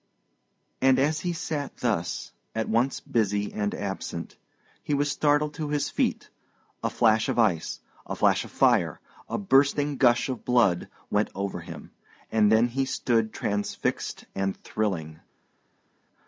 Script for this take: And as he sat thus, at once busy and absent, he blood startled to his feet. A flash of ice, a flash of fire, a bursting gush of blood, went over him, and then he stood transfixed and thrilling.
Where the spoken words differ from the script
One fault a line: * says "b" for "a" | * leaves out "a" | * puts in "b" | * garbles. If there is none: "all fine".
* says "was" for "blood"